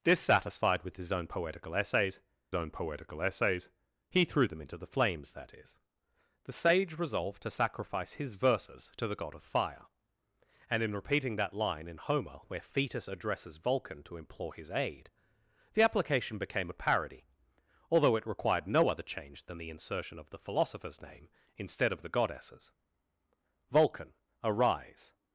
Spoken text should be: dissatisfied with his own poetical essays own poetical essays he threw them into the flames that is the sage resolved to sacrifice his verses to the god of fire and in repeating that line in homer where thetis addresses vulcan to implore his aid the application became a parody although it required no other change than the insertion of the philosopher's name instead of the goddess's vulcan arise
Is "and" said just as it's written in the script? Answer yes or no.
yes